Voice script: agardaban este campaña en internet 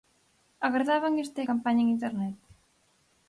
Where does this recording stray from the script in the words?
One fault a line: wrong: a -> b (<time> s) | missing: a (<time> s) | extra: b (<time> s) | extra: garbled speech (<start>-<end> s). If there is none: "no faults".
no faults